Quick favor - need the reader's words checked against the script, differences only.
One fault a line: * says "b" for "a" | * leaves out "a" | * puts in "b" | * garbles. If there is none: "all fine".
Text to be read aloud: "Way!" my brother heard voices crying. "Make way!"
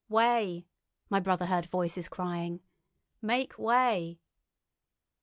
all fine